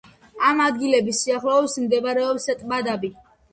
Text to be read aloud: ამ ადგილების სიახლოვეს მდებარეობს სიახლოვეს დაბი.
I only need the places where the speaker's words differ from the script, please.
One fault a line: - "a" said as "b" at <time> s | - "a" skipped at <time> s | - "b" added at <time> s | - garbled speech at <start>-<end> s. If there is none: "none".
- "სიახლოვეს" said as "ტბა" at 2.6 s